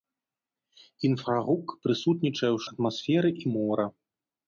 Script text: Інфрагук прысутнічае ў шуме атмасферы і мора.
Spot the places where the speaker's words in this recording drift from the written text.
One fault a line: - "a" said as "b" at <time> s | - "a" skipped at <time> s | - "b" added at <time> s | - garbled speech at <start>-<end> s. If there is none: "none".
- "шуме" skipped at 2.6 s